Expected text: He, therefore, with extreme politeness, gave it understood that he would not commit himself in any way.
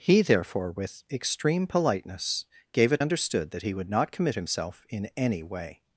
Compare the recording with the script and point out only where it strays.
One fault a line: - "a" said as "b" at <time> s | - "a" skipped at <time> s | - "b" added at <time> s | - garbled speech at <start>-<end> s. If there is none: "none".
none